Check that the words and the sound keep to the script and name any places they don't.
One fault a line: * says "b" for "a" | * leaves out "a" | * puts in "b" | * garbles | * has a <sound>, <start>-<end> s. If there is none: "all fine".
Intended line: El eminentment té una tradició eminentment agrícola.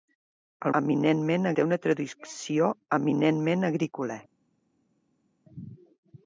all fine